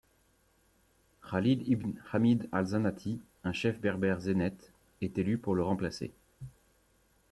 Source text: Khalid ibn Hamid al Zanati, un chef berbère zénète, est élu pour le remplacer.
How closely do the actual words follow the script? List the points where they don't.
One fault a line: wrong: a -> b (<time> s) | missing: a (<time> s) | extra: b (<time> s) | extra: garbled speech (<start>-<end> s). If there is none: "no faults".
no faults